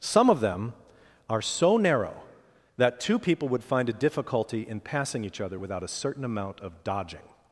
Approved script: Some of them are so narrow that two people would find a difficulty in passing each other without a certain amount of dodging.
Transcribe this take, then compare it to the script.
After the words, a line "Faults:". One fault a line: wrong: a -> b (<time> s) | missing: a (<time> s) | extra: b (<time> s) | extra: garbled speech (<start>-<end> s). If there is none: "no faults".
Some of them are so narrow that two people would find a difficulty in passing each other without a certain amount of dodging.
Faults:
no faults